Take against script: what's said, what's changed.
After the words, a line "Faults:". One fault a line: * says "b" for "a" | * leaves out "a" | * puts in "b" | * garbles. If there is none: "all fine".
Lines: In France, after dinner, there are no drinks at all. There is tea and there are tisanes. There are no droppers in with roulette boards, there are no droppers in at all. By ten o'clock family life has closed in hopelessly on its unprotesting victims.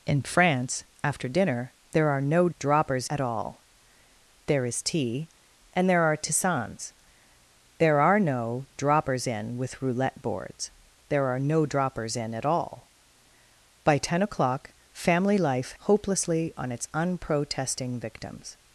In France, after dinner, there are no droppers at all. There is tea and there are tisanes. There are no droppers in with roulette boards, there are no droppers in at all. By ten o'clock family life hopelessly on its unprotesting victims.
Faults:
* says "droppers" for "drinks"
* leaves out "has closed in"